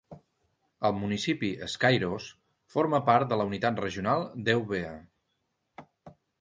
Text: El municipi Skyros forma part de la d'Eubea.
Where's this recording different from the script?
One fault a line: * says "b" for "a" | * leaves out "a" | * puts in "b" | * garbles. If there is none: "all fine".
* puts in "unitat regional"